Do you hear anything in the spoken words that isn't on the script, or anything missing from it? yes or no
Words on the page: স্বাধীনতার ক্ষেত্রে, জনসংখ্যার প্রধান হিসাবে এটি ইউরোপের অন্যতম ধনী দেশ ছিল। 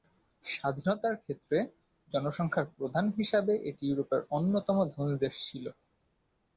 no